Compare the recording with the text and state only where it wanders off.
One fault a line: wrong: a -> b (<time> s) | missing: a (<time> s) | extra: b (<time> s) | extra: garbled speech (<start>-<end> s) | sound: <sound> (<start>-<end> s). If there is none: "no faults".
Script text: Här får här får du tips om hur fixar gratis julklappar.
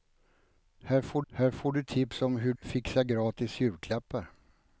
no faults